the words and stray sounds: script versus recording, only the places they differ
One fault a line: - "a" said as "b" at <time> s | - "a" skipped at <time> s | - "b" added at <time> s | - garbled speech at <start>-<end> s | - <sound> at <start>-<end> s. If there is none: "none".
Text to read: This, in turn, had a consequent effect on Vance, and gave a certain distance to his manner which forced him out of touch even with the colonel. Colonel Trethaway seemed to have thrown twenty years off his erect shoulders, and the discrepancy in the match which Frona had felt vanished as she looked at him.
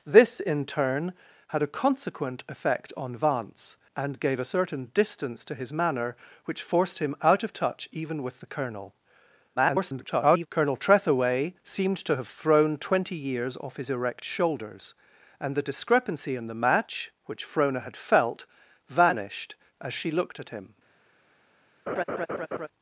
- garbled speech at 9.6-10.5 s
- laugh at 21.9-22.7 s